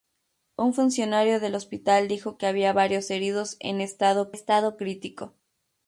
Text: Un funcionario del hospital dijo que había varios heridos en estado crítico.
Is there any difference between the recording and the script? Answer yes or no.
yes